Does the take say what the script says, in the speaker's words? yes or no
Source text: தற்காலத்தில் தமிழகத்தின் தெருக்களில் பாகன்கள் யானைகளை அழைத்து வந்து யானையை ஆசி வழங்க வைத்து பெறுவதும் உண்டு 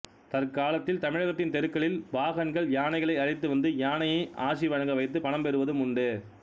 no